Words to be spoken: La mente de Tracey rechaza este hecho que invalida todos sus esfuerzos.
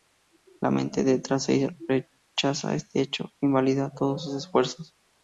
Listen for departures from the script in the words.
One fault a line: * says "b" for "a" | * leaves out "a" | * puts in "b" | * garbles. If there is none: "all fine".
all fine